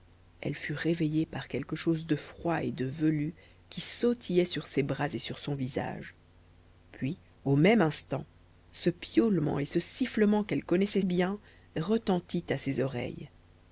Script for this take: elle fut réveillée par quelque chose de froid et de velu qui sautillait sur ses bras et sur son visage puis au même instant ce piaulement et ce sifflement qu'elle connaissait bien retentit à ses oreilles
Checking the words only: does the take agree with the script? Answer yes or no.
yes